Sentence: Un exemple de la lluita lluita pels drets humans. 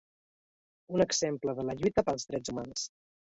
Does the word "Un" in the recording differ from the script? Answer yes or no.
no